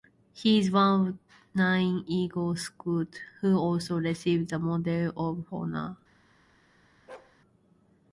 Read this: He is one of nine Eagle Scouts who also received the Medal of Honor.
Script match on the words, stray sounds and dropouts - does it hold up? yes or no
no